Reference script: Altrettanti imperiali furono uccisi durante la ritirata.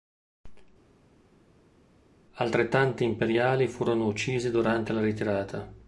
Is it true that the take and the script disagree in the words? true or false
false